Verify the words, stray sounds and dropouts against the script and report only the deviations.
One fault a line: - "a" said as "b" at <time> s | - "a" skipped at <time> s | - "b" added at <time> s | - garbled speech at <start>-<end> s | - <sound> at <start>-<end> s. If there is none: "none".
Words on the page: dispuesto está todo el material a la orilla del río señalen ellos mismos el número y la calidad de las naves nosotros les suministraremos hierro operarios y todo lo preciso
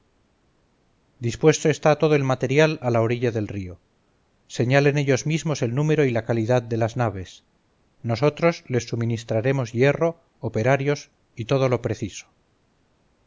none